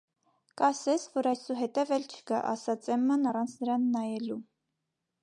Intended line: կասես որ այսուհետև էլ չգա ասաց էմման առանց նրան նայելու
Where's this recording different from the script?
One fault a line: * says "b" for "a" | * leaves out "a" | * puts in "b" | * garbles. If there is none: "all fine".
all fine